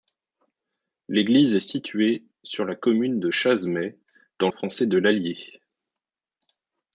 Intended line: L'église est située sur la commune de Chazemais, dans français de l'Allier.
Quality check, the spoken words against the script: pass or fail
pass